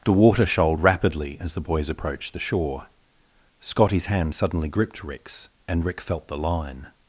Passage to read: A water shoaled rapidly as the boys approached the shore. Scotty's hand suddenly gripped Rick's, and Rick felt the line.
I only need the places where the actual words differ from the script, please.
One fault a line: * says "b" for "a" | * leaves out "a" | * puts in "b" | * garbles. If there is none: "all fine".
* says "The" for "A"